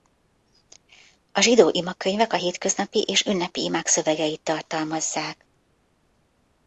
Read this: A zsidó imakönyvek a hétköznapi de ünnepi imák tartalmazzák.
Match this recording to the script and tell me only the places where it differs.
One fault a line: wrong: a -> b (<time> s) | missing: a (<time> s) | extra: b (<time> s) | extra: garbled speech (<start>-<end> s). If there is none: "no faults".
wrong: de -> és (3.0 s)
extra: szövegeit (3.9 s)